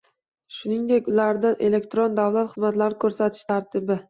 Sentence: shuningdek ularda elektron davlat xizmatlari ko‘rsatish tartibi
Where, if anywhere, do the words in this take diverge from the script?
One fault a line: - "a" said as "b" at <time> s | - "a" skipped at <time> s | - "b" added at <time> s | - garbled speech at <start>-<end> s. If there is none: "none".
none